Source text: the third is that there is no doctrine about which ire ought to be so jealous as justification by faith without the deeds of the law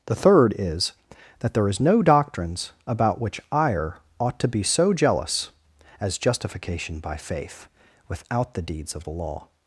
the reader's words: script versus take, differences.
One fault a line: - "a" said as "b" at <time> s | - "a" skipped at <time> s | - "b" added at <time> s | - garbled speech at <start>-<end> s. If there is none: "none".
- "doctrine" said as "doctrines" at 2.0 s